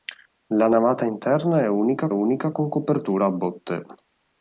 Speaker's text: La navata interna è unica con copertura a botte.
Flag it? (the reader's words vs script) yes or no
yes